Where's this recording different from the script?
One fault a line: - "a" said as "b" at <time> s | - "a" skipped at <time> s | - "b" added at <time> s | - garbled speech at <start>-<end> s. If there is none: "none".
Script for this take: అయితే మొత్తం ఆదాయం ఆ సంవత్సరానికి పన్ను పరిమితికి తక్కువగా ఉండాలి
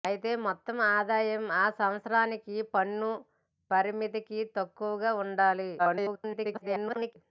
- garbled speech at 5.8-7.2 s